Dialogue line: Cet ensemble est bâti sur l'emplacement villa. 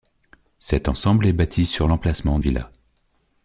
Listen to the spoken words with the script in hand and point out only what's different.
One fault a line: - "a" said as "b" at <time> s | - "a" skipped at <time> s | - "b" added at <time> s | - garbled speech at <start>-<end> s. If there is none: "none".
none